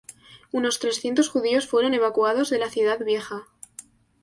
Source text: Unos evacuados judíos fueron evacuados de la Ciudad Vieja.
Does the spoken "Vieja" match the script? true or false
true